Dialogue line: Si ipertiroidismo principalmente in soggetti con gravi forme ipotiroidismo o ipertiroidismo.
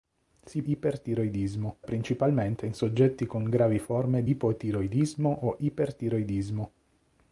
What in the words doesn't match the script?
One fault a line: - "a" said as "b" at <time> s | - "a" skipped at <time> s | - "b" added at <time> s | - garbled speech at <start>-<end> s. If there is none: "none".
none